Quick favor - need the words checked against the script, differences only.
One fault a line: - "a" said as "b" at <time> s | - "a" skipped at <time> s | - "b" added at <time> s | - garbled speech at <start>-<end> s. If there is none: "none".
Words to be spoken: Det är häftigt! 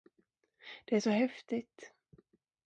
- "så" added at 1.0 s